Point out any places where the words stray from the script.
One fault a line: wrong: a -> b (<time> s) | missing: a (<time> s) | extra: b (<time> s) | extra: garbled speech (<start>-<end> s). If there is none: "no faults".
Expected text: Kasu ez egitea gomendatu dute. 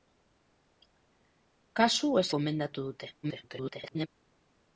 missing: egitea (2.3 s)
extra: garbled speech (3.2-4.1 s)